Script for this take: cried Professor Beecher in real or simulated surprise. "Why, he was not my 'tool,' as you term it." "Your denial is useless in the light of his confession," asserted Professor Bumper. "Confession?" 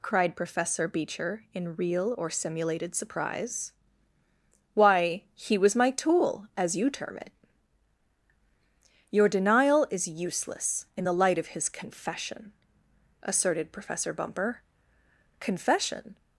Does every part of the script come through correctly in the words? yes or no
no